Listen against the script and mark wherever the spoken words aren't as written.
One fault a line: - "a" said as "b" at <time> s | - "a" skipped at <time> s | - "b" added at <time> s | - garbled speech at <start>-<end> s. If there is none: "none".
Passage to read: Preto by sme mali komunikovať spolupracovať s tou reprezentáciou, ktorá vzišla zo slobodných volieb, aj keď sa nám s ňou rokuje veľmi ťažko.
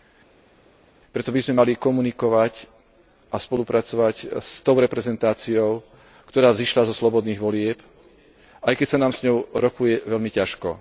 - "a" added at 3.3 s